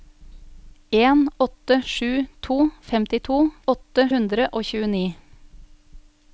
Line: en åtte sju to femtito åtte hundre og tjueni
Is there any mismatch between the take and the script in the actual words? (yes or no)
no